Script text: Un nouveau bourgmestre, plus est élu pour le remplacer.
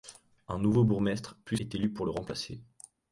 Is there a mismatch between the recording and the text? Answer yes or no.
no